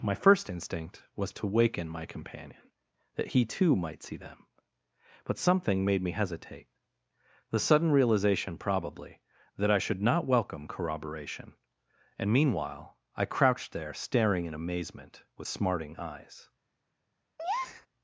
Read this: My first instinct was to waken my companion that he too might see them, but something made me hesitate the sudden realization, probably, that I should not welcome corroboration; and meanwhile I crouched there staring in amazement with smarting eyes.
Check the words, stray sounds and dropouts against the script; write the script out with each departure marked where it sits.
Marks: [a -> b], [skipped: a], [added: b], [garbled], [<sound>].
My first instinct was to waken my companion that he too might see them, but something made me hesitate the sudden realization, probably, that I should not welcome corroboration; and meanwhile I crouched there staring in amazement with smarting eyes. [breath]